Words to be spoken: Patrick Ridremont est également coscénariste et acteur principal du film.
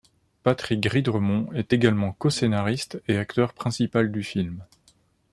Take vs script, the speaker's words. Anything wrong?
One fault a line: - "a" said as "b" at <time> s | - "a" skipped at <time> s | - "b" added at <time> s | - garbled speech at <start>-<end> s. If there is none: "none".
none